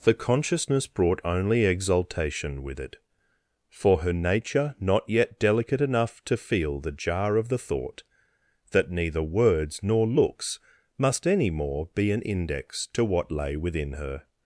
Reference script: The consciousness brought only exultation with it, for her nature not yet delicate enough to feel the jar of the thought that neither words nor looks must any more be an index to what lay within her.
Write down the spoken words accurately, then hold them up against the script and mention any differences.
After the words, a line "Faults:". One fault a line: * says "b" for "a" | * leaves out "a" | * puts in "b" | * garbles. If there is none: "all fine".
The consciousness brought only exultation with it, for her nature not yet delicate enough to feel the jar of the thought that neither words nor looks must any more be an index to what lay within her.
Faults:
all fine